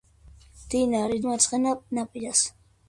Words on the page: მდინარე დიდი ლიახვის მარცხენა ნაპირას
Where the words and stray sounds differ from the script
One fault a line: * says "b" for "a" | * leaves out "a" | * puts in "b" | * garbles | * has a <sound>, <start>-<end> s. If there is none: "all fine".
* leaves out "დიდი ლიახვის"